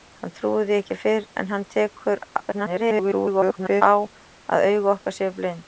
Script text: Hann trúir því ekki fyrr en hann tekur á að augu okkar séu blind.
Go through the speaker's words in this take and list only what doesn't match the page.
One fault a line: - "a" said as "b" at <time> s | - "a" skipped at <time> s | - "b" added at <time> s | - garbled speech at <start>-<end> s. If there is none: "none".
- garbled speech at 2.4-3.8 s